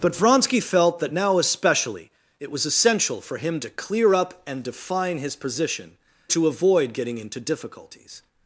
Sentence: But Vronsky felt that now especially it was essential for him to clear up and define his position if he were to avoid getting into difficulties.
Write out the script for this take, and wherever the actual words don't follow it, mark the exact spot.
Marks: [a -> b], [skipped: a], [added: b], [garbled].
But Vronsky felt that now especially it was essential for him to clear up and define his position [skipped: if he were] to avoid getting into difficulties.